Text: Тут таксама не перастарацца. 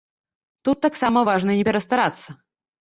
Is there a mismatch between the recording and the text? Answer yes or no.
yes